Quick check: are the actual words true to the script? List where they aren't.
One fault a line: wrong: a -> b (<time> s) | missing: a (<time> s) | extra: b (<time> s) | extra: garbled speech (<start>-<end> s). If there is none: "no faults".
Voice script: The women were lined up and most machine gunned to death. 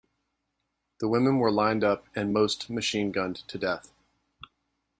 no faults